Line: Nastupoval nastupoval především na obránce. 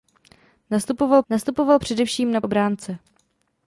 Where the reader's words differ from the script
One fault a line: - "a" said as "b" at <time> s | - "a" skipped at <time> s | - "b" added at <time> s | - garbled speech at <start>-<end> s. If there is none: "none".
none